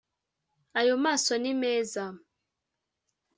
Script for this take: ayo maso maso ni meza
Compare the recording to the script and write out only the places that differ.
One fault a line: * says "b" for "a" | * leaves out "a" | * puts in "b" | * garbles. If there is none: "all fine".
* leaves out "maso"